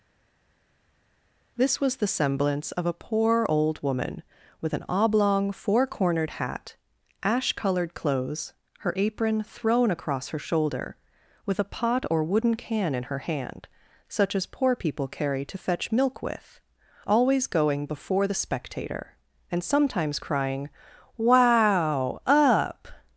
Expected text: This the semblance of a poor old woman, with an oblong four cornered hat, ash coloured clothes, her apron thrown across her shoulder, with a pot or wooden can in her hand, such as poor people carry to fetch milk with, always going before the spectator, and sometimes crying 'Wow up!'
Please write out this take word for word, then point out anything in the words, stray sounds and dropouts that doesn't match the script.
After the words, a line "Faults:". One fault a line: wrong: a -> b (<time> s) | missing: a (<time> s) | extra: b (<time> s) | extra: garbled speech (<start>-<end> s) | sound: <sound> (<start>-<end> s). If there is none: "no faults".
This was the semblance of a poor old woman, with an oblong four cornered hat, ash coloured clothes, her apron thrown across her shoulder, with a pot or wooden can in her hand, such as poor people carry to fetch milk with, always going before the spectator, and sometimes crying 'Wow up!'
Faults:
extra: was (1.8 s)